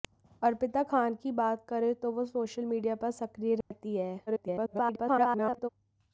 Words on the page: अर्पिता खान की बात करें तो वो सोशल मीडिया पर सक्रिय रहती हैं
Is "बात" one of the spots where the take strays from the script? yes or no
no